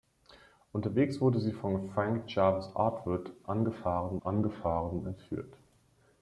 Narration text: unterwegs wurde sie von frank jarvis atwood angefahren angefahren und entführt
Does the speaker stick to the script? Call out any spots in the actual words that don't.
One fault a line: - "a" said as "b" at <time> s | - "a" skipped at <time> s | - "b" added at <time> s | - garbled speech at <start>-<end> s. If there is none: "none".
none